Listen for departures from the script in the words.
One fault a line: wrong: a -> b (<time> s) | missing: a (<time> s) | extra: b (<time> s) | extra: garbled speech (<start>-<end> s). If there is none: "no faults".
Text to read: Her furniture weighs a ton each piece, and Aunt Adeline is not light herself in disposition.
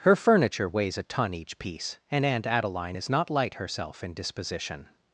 no faults